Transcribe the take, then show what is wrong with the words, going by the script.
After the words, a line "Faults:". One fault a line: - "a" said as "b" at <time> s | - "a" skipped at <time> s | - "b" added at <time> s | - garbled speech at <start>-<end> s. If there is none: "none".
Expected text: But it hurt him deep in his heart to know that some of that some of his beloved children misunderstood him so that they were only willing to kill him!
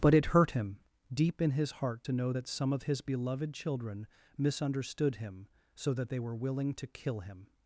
But it hurt him deep in his heart to know that some of his beloved children misunderstood him so that they were willing to kill him!
Faults:
- "that some of" skipped at 2.8 s
- "only" skipped at 6.3 s